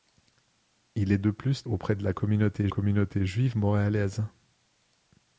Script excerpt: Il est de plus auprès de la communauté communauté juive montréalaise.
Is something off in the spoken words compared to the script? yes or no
no